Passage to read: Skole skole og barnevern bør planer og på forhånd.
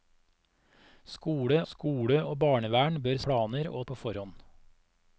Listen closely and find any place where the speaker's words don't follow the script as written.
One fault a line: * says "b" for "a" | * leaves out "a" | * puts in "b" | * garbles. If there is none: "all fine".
all fine